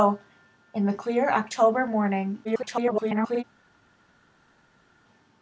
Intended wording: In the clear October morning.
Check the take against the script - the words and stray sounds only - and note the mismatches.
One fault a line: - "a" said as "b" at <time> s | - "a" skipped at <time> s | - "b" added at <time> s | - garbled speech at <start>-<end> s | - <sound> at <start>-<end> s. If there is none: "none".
- garbled speech at 2.4-3.4 s